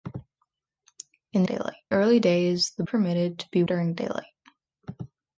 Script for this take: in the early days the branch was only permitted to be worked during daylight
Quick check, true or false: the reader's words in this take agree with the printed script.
false